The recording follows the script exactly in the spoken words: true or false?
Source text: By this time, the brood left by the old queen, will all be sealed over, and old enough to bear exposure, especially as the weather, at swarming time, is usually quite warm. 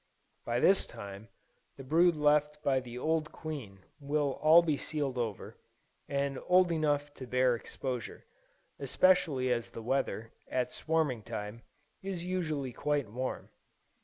true